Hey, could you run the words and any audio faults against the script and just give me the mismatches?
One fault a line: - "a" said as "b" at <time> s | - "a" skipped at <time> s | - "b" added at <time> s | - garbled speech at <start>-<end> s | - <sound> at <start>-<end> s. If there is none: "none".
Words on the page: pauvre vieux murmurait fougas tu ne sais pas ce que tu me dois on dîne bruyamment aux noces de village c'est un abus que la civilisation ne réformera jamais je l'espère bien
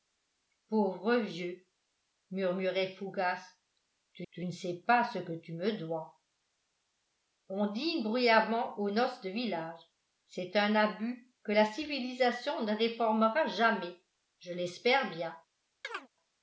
- "tu" added at 4.3 s
- chirp at 15.8-16.1 s